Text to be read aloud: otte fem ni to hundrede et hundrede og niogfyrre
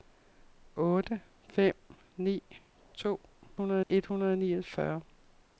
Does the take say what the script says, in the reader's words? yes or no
yes